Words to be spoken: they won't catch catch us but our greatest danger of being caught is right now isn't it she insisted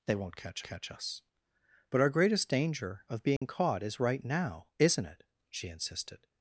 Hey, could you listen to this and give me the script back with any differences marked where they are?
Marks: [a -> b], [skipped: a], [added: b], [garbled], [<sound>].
they won't catch catch us but our greatest danger of being [dropout] caught is right now isn't it she insisted